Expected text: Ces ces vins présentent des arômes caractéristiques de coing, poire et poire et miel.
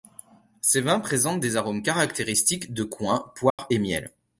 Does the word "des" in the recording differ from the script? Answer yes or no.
no